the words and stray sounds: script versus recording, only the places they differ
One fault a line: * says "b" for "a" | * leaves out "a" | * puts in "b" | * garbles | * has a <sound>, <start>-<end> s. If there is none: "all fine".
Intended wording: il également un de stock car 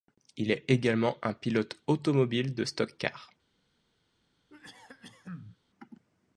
* puts in "est"
* puts in "pilote automobile"
* has a cough, 4.5-5.6 s